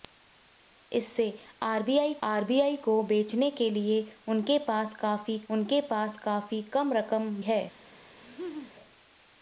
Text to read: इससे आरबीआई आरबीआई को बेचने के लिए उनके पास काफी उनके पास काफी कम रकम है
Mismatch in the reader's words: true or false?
false